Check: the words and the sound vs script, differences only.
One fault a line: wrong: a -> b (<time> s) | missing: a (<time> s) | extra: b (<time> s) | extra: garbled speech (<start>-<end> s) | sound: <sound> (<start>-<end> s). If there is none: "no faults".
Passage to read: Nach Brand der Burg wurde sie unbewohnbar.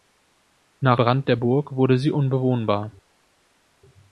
no faults